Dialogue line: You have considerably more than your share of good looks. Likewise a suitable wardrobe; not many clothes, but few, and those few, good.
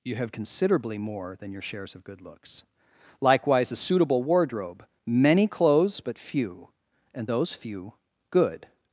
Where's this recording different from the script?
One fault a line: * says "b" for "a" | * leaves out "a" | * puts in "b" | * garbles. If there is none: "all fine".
* says "shares" for "share"
* leaves out "not"